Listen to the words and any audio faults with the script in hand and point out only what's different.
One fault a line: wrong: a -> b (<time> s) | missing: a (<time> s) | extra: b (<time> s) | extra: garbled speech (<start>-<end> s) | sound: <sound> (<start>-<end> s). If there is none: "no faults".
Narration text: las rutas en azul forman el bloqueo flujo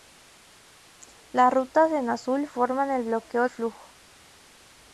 no faults